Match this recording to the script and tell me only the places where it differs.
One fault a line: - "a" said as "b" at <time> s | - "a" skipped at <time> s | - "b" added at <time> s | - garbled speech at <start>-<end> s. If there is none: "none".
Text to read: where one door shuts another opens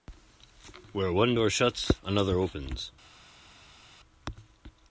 none